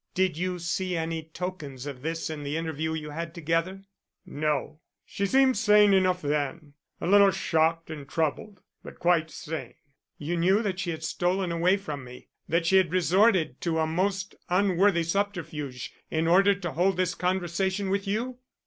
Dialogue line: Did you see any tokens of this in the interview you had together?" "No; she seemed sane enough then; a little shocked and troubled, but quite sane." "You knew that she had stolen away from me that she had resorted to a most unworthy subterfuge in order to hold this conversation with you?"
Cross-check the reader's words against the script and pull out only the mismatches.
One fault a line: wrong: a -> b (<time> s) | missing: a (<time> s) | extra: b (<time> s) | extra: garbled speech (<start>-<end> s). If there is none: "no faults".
no faults